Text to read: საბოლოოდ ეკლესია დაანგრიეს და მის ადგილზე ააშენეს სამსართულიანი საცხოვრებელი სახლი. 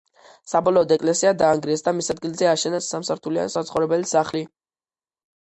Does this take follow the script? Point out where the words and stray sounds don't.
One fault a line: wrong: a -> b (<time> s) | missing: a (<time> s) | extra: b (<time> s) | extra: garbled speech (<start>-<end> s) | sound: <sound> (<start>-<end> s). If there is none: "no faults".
no faults